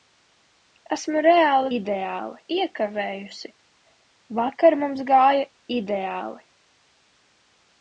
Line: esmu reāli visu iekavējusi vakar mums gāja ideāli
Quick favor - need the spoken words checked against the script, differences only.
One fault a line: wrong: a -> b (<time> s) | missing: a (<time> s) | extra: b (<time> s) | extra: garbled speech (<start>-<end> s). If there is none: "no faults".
wrong: visu -> ideāli (1.8 s)